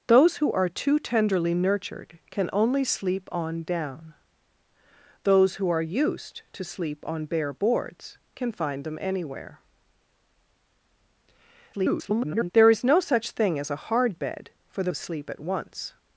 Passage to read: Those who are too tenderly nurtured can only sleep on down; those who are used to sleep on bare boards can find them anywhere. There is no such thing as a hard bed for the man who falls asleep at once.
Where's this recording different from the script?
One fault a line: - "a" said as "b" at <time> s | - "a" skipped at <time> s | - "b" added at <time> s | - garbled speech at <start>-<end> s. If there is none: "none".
- garbled speech at 11.7-12.5 s
- "man who falls" skipped at 14.9 s